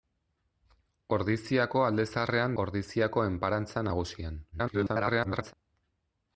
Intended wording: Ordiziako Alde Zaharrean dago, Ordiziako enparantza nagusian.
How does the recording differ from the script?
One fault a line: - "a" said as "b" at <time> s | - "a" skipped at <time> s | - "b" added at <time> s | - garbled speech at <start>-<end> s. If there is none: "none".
- "dago" skipped at 2.6 s
- garbled speech at 4.5-5.5 s